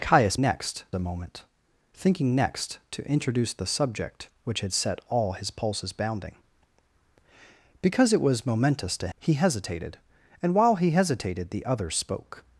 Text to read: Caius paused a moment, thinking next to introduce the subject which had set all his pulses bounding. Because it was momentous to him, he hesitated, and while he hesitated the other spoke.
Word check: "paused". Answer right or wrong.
wrong